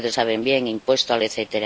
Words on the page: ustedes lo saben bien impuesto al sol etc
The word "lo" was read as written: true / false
false